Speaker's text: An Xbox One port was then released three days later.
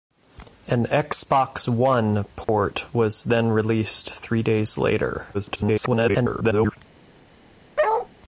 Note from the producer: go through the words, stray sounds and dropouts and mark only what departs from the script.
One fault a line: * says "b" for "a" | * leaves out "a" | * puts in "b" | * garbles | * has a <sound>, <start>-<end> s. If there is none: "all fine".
* has a dropout, 2.4-2.5 s
* garbles
* has a bark, 7.8-8.1 s